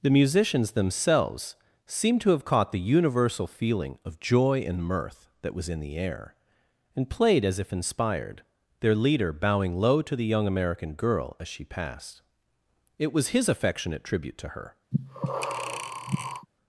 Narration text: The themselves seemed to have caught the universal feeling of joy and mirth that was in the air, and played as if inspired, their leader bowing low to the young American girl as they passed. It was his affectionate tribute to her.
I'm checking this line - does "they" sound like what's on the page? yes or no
no